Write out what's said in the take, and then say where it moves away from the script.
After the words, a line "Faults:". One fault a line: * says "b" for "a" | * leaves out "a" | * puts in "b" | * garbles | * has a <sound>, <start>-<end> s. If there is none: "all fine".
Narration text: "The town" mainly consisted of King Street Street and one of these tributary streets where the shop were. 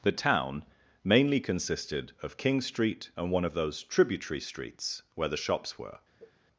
"The town" mainly consisted of King Street and one of those tributary streets where the shops were.
Faults:
* leaves out "Street"
* says "those" for "these"
* says "shops" for "shop"
* has a sneeze, 6.2-6.3 s